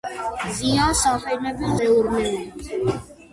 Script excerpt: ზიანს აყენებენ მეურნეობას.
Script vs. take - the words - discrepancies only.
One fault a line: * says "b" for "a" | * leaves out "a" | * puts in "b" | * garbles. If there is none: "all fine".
all fine